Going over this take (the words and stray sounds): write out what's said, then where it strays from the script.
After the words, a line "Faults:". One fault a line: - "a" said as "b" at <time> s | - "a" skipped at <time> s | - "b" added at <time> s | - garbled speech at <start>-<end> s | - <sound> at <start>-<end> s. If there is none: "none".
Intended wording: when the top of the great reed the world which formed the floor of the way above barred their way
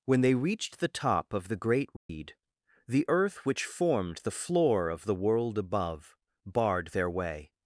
when they reached the top of the great reed the earth which formed the floor of the world above barred their way
Faults:
- "they reached" added at 0.2 s
- dropout at 2.0-2.1 s
- "world" said as "earth" at 3.1 s
- "way" said as "world" at 5.1 s